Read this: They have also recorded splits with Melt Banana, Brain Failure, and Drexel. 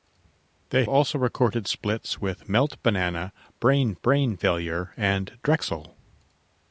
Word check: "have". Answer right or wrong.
wrong